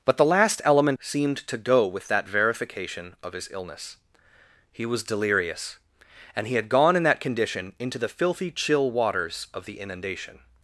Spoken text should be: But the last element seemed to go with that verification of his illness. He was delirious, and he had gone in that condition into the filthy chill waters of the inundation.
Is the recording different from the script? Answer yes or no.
no